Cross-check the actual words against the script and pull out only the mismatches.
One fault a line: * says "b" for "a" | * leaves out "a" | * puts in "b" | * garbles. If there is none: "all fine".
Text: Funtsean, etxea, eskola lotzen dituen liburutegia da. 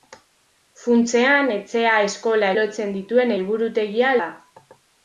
all fine